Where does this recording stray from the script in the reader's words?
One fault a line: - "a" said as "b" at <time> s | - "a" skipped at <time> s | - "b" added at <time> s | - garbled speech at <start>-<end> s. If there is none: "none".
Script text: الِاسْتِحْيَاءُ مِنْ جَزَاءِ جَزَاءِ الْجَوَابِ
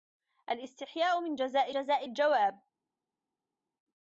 none